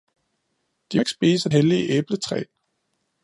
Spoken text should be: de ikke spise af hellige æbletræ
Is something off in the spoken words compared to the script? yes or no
no